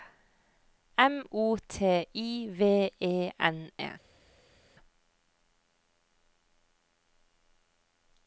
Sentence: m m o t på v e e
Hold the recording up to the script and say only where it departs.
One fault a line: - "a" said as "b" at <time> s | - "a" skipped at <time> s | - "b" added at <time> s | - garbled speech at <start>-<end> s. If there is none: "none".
- "m" skipped at 1.2 s
- "på" said as "i" at 2.1 s
- "n" added at 3.4 s